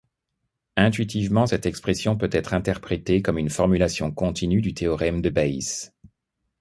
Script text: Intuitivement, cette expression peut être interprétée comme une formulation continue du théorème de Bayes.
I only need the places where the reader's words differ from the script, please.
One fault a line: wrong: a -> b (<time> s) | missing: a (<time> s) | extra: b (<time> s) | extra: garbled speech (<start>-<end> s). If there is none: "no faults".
no faults